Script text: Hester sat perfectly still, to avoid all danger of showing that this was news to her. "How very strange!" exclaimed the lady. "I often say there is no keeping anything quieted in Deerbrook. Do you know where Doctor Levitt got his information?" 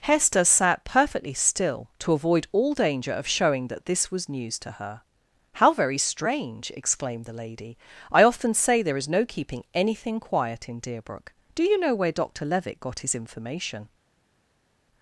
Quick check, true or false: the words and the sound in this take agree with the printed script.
false